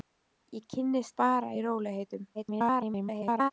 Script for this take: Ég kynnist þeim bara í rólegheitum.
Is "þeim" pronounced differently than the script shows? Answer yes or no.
yes